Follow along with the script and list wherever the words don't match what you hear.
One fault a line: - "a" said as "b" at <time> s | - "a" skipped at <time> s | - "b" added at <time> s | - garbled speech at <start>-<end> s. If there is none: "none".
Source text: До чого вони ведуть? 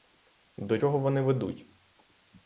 none